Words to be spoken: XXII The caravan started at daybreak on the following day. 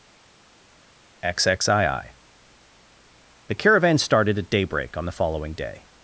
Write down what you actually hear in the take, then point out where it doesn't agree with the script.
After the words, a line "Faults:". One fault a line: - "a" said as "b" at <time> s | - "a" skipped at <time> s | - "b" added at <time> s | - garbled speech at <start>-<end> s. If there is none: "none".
XXII The caravan started at daybreak on the following day.
Faults:
none